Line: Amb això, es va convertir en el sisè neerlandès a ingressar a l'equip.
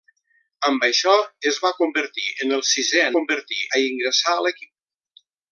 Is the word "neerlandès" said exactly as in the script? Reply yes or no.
no